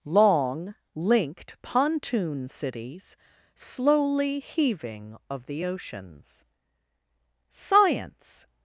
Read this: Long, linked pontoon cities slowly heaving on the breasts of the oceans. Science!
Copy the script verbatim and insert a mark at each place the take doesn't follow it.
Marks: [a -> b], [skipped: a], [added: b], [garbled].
Long, linked pontoon cities slowly heaving [skipped: on the breasts] of the oceans. Science!